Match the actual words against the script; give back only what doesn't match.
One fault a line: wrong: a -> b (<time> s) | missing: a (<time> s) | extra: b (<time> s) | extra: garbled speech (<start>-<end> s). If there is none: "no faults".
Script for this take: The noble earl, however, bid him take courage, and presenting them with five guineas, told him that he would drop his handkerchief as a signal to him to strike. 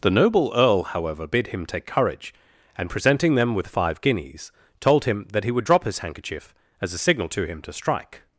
no faults